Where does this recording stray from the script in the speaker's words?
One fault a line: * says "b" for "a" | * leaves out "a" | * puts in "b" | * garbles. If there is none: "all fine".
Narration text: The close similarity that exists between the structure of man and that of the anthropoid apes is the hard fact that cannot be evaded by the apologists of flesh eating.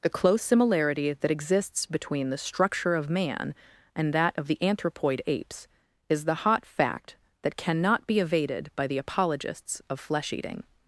* says "hot" for "hard"